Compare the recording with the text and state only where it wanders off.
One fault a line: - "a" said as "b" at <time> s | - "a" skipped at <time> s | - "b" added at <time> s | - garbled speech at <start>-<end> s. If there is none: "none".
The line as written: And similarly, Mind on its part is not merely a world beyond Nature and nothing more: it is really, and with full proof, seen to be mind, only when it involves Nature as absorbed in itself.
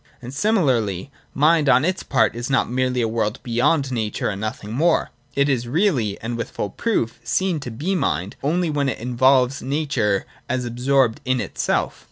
none